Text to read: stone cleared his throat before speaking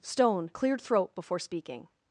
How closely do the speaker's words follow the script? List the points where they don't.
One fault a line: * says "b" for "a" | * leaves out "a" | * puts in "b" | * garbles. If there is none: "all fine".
* leaves out "his"